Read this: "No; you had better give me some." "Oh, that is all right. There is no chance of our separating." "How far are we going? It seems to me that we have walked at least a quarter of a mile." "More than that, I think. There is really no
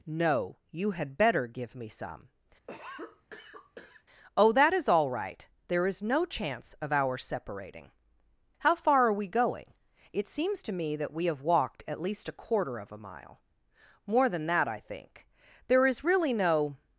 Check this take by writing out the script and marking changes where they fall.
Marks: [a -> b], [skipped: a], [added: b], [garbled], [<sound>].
"No; you had better give me some." [cough] "Oh, that is all right. There is no chance of our separating." "How far are we going? It seems to me that we have walked at least a quarter of a mile." "More than that, I think. There is really no